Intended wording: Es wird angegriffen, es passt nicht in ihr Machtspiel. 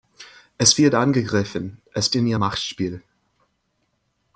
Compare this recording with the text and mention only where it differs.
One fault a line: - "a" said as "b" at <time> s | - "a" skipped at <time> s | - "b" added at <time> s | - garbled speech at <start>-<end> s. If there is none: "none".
- "passt nicht" skipped at 2.1 s